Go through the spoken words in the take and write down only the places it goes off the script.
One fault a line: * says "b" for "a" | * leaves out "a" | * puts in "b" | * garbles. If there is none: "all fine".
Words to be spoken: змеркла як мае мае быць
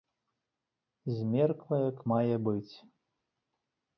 * leaves out "мае"